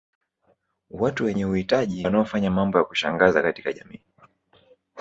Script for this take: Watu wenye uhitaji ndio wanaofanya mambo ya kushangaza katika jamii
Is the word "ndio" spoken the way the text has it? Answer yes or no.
no